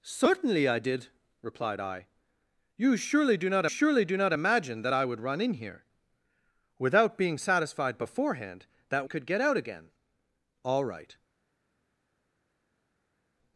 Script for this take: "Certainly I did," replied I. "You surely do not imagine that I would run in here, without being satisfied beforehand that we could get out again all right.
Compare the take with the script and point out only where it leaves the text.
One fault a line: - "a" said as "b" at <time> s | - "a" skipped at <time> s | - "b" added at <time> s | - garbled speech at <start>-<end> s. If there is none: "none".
- "surely do not" added at 3.7 s
- "we" skipped at 9.1 s